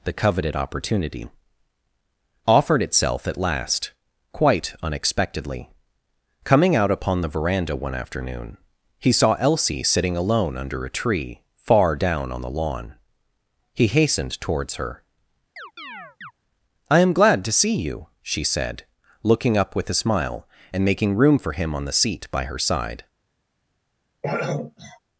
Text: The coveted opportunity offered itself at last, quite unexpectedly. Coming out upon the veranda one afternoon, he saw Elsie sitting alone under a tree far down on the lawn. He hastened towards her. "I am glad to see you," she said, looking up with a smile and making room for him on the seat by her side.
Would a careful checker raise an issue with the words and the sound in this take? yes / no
yes